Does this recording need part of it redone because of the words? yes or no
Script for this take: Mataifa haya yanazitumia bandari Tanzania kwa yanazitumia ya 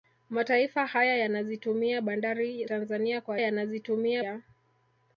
no